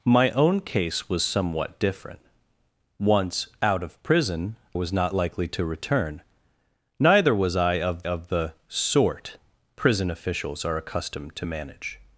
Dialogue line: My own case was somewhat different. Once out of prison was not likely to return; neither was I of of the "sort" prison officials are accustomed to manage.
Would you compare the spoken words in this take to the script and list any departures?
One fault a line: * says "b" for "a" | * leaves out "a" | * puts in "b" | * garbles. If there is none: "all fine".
all fine